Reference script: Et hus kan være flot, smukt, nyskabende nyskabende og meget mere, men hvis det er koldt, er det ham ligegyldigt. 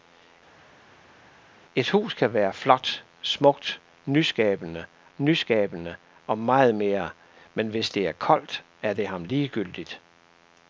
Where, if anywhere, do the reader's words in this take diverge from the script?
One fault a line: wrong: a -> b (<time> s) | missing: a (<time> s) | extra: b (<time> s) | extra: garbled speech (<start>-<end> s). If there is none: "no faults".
no faults